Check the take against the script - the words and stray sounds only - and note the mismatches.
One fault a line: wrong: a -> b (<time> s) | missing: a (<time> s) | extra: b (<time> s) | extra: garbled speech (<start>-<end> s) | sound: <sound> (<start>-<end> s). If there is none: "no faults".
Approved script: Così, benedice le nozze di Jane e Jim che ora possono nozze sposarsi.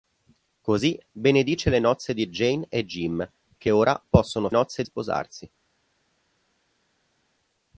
no faults